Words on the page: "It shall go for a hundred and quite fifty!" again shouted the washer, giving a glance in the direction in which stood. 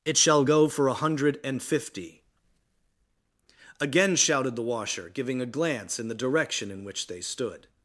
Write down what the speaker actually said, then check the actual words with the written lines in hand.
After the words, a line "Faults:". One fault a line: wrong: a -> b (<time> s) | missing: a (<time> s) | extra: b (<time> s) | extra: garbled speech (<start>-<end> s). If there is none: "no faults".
"It shall go for a hundred and fifty!" again shouted the washer, giving a glance in the direction in which they stood.
Faults:
missing: quite (1.6 s)
extra: they (7.1 s)